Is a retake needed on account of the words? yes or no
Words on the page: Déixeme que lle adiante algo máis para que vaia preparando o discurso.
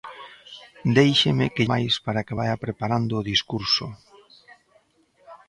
yes